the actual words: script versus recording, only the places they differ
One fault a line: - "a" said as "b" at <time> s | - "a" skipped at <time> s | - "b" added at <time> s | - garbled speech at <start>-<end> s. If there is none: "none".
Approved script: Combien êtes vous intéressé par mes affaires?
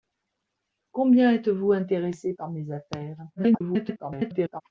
- garbled speech at 3.4-4.6 s